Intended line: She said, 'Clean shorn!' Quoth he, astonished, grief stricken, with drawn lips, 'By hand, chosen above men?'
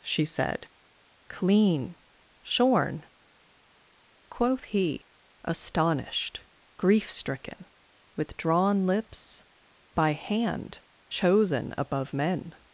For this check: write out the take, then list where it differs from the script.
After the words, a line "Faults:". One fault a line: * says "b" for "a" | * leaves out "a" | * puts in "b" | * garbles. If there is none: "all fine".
She said, 'Clean shorn!' Quoth he, astonished, grief stricken, with drawn lips, 'By hand, chosen above men?'
Faults:
all fine